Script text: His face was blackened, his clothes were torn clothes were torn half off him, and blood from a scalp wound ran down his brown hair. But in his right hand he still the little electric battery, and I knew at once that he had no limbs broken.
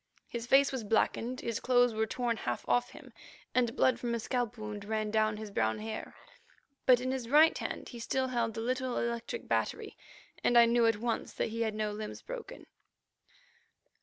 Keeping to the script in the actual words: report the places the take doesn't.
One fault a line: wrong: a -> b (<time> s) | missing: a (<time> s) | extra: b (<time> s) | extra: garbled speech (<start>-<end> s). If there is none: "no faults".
missing: clothes were torn (2.4 s)
extra: held (8.3 s)